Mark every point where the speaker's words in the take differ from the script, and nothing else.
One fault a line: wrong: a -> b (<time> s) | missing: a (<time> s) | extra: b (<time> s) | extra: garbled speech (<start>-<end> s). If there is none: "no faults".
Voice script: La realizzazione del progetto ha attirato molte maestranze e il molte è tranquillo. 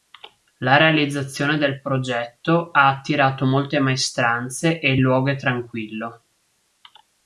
wrong: molte -> luogo (5.0 s)